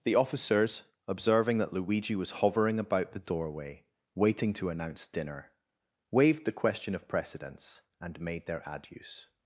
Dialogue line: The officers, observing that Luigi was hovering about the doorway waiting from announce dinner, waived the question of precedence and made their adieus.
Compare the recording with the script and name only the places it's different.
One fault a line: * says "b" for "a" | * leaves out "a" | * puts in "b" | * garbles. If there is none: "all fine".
* says "to" for "from"